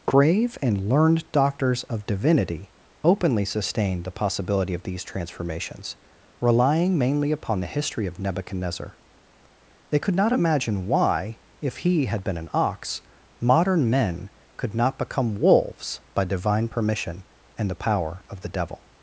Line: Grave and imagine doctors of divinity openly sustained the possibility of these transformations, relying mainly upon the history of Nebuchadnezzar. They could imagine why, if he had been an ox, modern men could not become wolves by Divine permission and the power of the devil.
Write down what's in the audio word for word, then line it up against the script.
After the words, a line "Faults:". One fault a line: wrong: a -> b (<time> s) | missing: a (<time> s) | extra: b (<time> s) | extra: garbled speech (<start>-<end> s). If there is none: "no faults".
Grave and learned doctors of divinity openly sustained the possibility of these transformations, relying mainly upon the history of Nebuchadnezzar. They could not imagine why, if he had been an ox, modern men could not become wolves by Divine permission and the power of the devil.
Faults:
wrong: imagine -> learned (0.9 s)
extra: not (10.2 s)